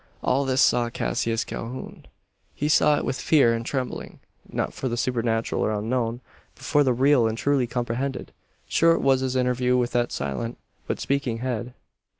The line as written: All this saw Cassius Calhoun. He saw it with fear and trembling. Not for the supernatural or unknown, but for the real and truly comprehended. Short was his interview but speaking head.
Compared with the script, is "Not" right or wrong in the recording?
right